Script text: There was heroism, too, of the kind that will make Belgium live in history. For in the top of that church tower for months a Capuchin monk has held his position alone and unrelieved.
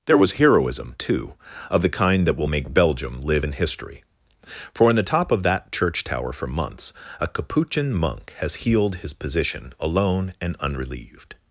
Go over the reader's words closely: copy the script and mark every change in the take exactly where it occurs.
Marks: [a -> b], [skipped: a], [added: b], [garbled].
There was heroism, too, of the kind that will make Belgium live in history. For in the top of that church tower for months a Capuchin monk has [held -> healed] his position alone and unrelieved.